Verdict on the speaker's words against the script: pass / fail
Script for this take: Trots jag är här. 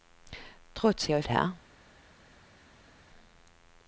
pass